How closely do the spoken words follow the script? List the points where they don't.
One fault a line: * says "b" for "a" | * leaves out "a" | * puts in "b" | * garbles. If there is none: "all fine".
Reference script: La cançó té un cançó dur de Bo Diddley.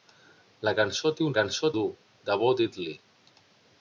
all fine